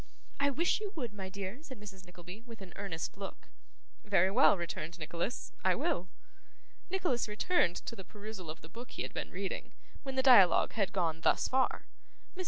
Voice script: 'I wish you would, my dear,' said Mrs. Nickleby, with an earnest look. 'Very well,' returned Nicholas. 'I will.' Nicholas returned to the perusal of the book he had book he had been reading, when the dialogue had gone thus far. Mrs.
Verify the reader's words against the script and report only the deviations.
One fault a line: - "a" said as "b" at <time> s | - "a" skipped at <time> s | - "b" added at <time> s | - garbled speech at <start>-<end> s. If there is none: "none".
- "book he had" skipped at 9.1 s